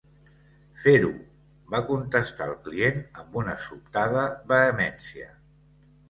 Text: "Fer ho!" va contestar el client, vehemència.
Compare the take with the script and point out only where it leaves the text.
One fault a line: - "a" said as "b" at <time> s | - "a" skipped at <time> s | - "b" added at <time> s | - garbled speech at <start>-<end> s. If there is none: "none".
- "amb una sobtada" added at 3.2 s